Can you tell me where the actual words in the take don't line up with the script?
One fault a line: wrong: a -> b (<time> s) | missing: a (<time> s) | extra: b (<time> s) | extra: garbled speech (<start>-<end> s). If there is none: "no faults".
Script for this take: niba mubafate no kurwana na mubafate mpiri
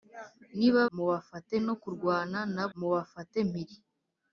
no faults